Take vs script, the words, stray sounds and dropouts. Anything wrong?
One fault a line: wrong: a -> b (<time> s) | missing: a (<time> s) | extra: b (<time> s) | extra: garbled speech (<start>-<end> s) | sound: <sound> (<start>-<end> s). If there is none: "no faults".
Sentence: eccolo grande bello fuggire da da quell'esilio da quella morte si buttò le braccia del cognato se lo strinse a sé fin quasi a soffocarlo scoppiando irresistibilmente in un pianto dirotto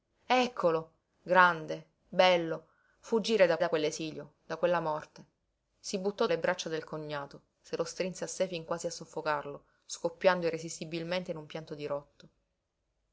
no faults